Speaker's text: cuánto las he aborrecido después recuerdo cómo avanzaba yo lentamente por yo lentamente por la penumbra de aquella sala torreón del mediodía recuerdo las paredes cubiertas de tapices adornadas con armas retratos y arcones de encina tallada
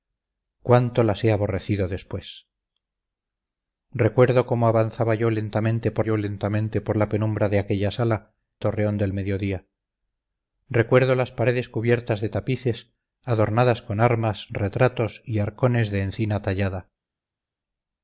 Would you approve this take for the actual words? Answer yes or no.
yes